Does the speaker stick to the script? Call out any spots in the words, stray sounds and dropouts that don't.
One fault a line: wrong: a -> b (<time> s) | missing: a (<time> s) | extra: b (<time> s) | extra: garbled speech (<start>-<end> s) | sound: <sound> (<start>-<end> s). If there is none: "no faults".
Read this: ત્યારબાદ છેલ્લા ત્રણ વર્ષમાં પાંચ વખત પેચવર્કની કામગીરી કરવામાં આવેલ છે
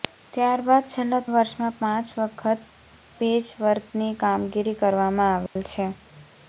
missing: ત્રણ (1.2 s)
sound: dropout (5.5-5.6 s)